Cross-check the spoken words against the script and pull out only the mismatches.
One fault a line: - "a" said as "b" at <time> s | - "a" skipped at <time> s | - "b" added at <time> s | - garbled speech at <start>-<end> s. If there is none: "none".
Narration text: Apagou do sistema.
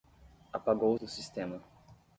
none